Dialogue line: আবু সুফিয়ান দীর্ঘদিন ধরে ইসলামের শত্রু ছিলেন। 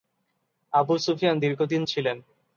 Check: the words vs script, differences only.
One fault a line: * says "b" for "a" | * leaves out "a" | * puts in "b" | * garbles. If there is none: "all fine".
* leaves out "ধরে ইসলামের শত্রু"